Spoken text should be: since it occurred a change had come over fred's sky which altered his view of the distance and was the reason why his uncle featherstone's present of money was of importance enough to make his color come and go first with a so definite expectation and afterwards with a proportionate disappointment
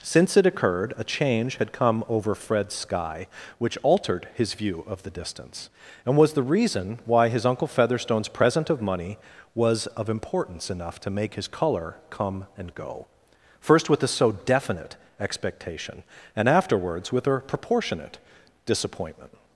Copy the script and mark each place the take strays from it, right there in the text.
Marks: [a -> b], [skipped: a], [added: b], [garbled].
since it occurred a change had come over fred's sky which altered his view of the distance and was the reason why his uncle featherstone's present of money was of importance enough to make his color come and go first with a so definite expectation and afterwards with a proportionate disappointment